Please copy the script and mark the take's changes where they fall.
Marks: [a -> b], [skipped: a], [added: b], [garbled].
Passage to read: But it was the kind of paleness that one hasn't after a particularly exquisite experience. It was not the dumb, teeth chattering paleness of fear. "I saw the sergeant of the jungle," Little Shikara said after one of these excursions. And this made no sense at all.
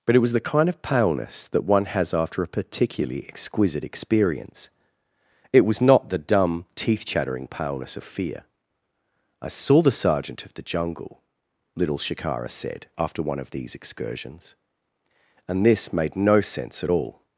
But it was the kind of paleness that one [hasn't -> has] after a particularly exquisite experience. It was not the dumb, teeth chattering paleness of fear. "I saw the sergeant of the jungle," Little Shikara said after one of these excursions. And this made no sense at all.